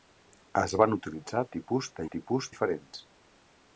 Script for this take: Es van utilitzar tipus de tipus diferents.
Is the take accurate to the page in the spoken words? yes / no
yes